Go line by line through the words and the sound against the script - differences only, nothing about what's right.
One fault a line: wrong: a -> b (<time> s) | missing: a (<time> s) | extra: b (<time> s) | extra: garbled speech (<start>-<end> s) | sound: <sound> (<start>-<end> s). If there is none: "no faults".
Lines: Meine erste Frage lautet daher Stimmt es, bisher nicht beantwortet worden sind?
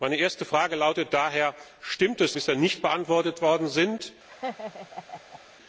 sound: laugh (4.3-5.4 s)